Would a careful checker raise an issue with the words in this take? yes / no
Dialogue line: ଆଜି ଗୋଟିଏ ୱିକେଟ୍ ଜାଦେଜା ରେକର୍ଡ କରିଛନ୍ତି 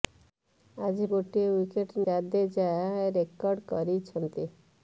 no